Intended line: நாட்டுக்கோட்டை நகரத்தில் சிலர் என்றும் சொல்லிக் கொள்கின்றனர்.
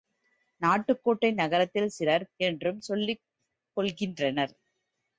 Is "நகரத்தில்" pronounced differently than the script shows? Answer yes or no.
no